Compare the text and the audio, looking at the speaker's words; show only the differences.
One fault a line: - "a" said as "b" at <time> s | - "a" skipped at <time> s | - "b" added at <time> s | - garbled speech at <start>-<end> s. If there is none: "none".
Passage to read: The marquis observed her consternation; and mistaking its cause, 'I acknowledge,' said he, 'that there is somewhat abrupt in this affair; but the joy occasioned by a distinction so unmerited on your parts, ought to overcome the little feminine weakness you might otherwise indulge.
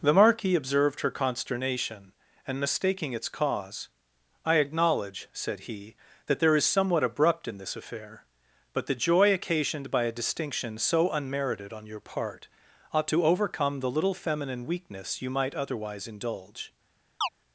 - "parts" said as "part" at 12.0 s